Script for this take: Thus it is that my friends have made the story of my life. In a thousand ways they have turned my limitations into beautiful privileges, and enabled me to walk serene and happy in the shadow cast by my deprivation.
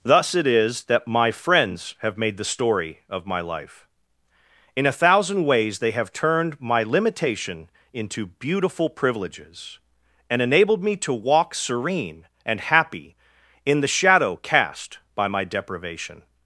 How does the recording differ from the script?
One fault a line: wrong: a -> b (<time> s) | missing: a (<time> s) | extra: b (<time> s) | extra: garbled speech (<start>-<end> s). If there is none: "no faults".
wrong: limitations -> limitation (6.8 s)